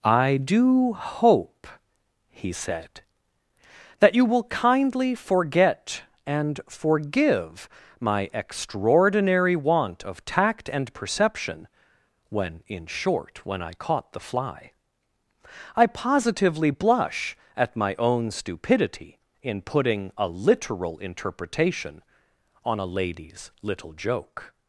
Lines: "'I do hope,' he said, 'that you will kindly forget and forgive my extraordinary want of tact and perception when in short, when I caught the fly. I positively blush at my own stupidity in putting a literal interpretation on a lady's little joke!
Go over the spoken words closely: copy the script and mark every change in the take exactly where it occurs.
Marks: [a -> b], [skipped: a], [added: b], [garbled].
"'I do hope,' he said, 'that you will kindly forget and forgive my extraordinary want of tact and perception when in short, when I caught the fly. I positively blush at my own stupidity in putting a literal interpretation on a lady's little joke!